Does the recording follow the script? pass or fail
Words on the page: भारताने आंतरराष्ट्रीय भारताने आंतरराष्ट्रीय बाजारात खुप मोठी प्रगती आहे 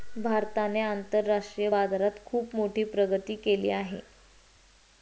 fail